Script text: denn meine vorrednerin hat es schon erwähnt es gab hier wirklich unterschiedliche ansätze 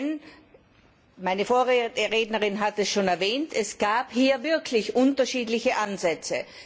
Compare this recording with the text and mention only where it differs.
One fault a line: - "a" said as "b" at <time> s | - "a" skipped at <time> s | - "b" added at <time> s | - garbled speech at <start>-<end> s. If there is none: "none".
none